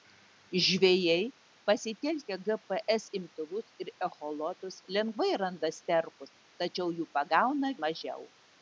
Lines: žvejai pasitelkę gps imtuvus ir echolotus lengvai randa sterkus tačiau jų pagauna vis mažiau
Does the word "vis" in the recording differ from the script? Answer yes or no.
yes